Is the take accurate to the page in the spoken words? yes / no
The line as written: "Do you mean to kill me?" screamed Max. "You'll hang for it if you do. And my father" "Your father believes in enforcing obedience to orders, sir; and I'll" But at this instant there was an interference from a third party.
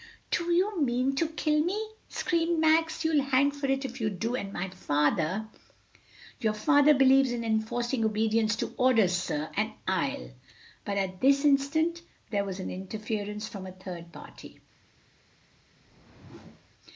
yes